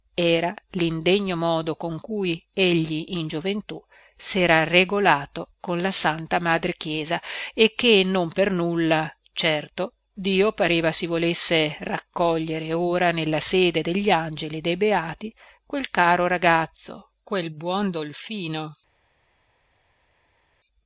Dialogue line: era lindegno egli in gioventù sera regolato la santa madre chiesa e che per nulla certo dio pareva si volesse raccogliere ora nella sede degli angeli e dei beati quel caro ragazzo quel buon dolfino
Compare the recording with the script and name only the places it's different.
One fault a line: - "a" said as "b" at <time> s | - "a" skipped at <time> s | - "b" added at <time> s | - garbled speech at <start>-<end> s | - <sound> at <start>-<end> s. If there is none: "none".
- "modo con cui" added at 1.4 s
- "con" added at 5.6 s
- "non" added at 8.1 s